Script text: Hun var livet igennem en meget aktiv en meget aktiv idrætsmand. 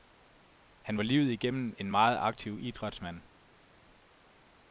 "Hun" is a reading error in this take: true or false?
true